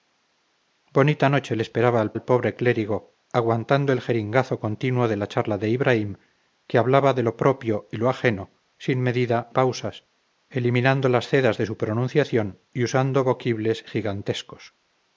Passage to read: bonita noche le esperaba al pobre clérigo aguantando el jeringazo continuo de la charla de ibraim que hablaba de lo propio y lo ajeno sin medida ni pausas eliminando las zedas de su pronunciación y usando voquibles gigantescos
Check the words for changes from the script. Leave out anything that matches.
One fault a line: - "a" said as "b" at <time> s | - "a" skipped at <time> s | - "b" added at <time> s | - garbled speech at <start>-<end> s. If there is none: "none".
- "al" added at 2.1 s
- "ni" skipped at 9.5 s